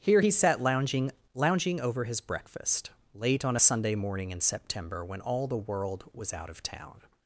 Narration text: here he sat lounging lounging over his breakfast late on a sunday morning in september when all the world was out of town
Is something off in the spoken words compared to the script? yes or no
no